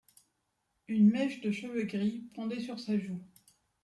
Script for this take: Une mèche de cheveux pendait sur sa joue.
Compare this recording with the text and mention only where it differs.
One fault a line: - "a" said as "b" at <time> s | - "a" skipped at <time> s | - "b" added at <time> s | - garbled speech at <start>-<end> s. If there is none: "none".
- "gris" added at 1.8 s